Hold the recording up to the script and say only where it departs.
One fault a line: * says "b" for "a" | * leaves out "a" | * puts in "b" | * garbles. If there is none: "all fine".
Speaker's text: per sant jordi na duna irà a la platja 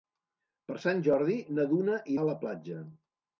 * leaves out "irà"